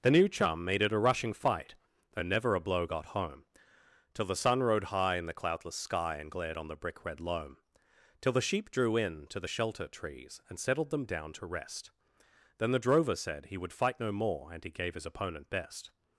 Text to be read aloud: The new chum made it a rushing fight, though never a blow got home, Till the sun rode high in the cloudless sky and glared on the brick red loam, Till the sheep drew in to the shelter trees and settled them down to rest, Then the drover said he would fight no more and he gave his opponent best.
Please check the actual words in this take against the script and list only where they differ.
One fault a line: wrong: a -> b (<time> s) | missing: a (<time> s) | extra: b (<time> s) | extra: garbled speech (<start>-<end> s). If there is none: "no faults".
no faults